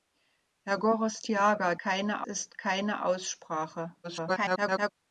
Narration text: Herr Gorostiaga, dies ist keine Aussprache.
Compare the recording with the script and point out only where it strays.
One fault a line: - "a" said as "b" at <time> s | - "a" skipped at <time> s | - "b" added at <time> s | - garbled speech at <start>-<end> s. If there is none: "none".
- "dies" said as "keine" at 1.8 s
- garbled speech at 4.0-4.9 s